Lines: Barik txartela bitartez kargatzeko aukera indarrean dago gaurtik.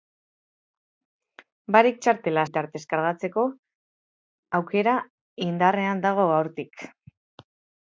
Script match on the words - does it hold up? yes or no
yes